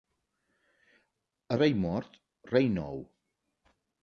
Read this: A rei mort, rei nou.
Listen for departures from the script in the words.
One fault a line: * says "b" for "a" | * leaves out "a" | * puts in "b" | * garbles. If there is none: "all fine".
all fine